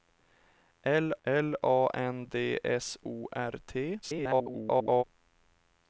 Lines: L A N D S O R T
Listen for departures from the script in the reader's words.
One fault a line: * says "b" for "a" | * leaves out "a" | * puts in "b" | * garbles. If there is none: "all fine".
* puts in "l"
* garbles